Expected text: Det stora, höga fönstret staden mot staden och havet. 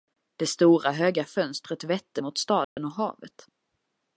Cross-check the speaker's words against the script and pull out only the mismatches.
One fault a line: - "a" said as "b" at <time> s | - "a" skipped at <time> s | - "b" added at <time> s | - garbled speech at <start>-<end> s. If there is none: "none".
- "staden" said as "vette" at 1.8 s